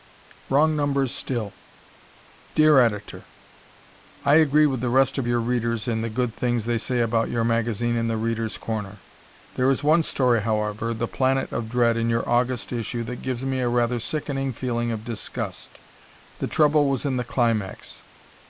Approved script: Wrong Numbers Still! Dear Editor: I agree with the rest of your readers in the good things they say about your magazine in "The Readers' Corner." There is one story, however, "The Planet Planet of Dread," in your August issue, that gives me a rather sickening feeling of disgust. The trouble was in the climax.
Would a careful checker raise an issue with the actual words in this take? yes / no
yes